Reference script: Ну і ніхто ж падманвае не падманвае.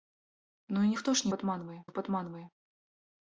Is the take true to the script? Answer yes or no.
yes